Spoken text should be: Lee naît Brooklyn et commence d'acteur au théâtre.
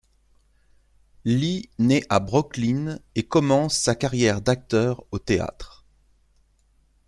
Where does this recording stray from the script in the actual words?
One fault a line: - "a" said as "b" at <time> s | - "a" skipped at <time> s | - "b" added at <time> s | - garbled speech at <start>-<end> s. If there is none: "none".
- "à" added at 2.1 s
- "sa carrière" added at 3.8 s